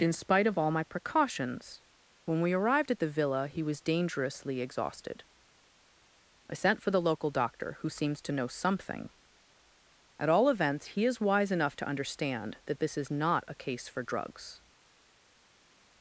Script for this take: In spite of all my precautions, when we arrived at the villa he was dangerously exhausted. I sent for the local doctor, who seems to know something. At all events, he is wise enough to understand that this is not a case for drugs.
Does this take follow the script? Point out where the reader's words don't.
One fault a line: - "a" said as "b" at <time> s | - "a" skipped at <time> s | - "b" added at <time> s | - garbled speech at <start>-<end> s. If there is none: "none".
none